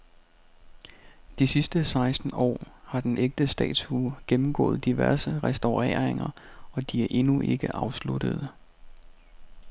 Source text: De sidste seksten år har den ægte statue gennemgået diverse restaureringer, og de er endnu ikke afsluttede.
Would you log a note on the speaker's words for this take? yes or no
no